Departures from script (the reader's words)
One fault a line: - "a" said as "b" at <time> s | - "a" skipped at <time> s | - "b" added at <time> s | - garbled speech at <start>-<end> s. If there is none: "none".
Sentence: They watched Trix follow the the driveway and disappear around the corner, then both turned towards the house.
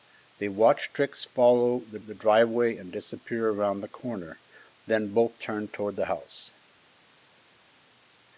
none